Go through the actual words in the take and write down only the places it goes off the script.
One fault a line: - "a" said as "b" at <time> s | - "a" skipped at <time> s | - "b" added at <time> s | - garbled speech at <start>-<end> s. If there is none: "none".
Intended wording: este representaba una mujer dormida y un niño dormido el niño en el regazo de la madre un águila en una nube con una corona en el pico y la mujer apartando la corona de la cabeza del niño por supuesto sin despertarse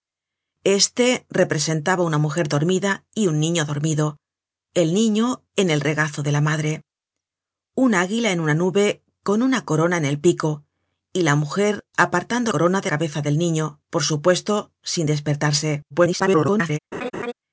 - "la" skipped at 12.5 s
- "la" skipped at 12.9 s
- garbled speech at 15.9-16.8 s